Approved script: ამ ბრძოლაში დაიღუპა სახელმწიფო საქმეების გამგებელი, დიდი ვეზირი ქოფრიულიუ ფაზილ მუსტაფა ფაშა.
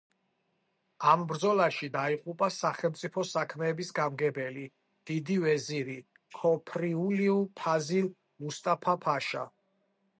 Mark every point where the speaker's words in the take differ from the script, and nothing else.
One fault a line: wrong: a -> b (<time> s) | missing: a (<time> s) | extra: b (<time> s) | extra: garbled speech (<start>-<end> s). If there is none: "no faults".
no faults